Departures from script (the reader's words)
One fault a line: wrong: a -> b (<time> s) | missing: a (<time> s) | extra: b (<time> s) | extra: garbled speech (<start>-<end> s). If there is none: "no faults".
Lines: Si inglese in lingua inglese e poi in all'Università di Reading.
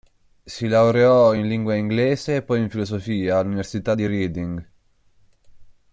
wrong: inglese -> laureò (0.7 s)
extra: filosofia (2.7 s)